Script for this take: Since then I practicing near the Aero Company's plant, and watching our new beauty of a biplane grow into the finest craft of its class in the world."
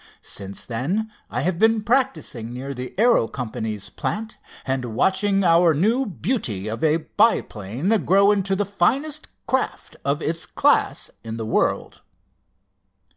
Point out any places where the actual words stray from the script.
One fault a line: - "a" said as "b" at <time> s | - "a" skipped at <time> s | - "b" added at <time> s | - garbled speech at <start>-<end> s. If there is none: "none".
- "have been" added at 1.4 s